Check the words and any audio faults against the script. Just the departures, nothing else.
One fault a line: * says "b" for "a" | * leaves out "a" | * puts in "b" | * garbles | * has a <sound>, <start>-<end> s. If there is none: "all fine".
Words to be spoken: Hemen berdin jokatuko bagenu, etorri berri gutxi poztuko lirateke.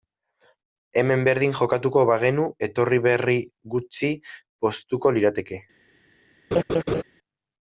* has a laugh, 6.5-7.0 s